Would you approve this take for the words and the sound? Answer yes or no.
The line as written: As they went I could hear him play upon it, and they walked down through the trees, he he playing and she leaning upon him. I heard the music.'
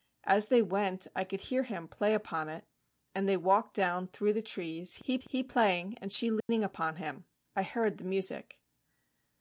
no